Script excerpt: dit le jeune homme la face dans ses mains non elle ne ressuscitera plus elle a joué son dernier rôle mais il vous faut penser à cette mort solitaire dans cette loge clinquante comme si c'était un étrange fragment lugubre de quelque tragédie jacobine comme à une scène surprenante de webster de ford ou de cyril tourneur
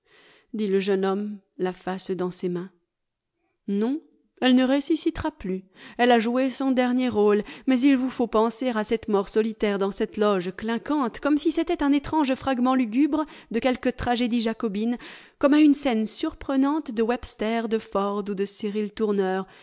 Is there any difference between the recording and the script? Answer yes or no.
no